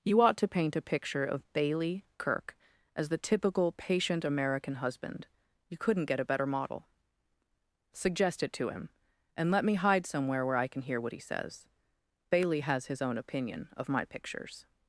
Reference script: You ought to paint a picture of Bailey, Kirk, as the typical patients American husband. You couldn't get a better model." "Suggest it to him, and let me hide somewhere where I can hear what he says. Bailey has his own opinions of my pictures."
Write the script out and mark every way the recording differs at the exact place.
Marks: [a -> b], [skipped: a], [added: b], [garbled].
You ought to paint a picture of Bailey, Kirk, as the typical [patients -> patient] American husband. You couldn't get a better model." "Suggest it to him, and let me hide somewhere where I can hear what he says. Bailey has his own [opinions -> opinion] of my pictures."